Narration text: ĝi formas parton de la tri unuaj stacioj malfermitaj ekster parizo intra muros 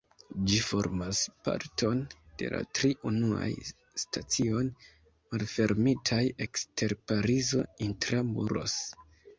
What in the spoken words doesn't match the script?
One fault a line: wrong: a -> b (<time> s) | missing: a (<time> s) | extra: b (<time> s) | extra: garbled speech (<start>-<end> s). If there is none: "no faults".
no faults